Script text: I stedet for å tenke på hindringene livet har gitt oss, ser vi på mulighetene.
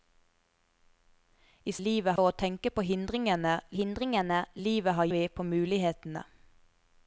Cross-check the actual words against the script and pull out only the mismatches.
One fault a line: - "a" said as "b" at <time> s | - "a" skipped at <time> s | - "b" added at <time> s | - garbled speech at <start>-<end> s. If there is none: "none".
- "stedet" said as "livet" at 1.9 s
- "hindringene" added at 3.8 s
- "gitt oss ser" skipped at 5.1 s